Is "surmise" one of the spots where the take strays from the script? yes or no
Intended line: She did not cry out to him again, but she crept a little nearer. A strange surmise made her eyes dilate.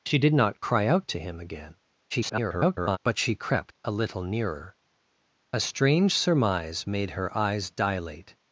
no